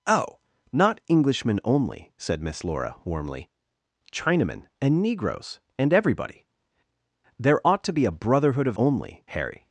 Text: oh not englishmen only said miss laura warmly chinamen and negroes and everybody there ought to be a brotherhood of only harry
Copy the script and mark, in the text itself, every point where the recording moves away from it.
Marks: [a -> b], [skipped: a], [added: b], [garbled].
oh not englishmen only said miss laura warmly chinamen and negroes and everybody there ought to be a brotherhood of only harry